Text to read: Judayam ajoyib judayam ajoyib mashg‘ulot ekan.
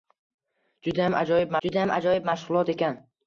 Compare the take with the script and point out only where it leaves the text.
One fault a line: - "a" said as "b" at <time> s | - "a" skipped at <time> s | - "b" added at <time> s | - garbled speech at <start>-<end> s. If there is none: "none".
none